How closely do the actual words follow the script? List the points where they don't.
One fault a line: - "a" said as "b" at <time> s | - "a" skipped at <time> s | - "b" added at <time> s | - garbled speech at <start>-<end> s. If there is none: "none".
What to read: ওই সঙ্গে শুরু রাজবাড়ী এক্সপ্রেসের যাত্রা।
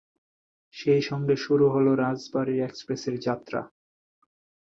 - "ওই" said as "সেই" at 0.8 s
- "হলো" added at 1.7 s